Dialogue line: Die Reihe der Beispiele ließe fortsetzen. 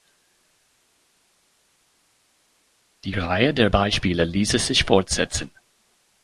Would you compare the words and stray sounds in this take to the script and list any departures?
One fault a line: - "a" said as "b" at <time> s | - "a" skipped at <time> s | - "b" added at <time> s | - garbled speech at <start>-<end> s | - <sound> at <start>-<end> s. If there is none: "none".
- "sich" added at 4.6 s